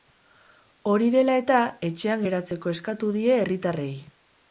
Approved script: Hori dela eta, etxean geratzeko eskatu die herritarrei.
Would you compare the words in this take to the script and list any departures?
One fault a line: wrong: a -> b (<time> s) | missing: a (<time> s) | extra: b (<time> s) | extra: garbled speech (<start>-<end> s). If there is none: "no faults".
no faults